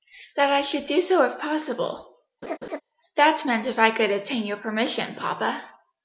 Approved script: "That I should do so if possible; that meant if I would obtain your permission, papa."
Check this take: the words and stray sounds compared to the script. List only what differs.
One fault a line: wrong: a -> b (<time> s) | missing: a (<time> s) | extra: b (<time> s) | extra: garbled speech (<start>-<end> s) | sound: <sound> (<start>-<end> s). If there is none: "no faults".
sound: laugh (2.4-2.8 s)
wrong: would -> could (3.9 s)